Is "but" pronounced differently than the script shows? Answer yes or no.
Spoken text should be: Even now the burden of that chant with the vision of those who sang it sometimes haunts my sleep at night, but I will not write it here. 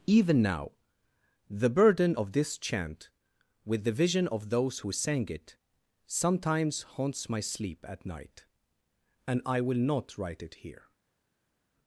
yes